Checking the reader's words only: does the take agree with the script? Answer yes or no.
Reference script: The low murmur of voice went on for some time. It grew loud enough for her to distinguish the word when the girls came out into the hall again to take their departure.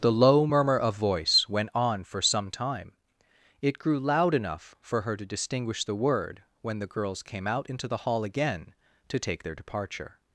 yes